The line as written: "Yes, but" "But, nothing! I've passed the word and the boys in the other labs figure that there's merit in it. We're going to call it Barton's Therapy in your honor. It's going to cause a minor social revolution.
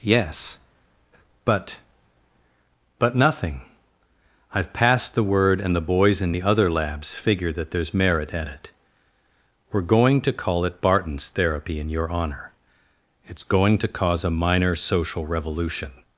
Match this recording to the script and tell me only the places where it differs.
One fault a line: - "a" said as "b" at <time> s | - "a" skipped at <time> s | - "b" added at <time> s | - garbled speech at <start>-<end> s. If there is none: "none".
- "in" said as "at" at 8.3 s